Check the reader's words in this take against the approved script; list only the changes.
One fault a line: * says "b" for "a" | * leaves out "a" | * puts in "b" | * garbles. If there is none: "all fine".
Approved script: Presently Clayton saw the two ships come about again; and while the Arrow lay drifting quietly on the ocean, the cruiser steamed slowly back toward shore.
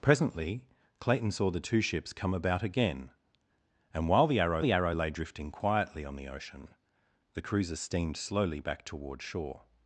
* puts in "the Arrow"